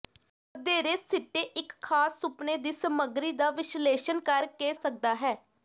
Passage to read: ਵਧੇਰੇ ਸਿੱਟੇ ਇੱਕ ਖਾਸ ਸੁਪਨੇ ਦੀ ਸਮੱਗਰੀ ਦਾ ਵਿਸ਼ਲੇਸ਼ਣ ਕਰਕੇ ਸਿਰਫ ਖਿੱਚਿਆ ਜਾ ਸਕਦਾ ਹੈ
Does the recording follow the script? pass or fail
fail